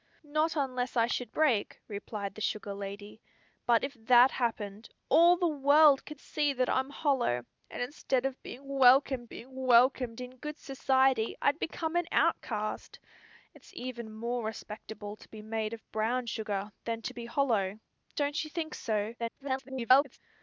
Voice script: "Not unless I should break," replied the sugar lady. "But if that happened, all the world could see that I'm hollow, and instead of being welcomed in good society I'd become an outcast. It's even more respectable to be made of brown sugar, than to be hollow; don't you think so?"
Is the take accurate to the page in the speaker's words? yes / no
no